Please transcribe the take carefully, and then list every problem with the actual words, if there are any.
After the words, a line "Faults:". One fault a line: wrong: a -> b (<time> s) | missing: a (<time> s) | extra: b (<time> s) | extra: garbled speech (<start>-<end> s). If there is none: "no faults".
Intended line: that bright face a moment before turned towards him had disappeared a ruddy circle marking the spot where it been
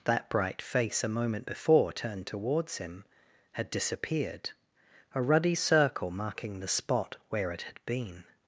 that bright face a moment before turned towards him had disappeared a ruddy circle marking the spot where it had been
Faults:
extra: had (7.6 s)